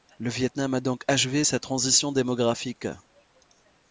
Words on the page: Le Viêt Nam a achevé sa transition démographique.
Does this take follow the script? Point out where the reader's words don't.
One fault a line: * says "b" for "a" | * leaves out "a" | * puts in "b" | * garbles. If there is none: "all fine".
* puts in "donc"